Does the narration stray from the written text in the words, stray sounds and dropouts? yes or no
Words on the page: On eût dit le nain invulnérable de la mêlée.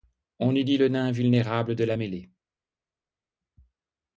no